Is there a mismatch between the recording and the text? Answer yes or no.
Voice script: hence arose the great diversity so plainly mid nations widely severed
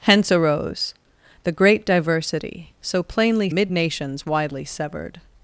no